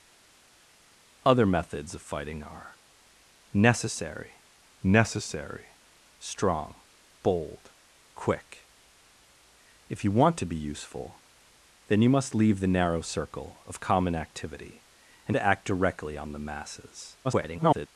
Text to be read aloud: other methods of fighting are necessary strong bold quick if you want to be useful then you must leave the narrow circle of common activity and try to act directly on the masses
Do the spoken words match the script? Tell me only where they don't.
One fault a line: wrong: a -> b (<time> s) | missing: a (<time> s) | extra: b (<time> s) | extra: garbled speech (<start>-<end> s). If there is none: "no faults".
extra: necessary (4.8 s)
missing: try (15.4 s)
extra: garbled speech (17.2-17.9 s)